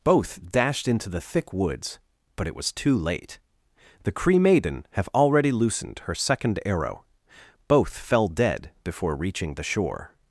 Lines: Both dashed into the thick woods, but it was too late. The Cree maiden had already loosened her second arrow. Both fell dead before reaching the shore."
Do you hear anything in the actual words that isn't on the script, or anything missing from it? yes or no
yes